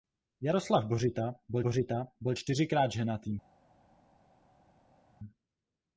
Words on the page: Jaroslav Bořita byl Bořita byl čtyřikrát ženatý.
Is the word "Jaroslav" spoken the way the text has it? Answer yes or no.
yes